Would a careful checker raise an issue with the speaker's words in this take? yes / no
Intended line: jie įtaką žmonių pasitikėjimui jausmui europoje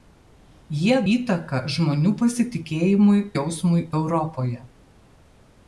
no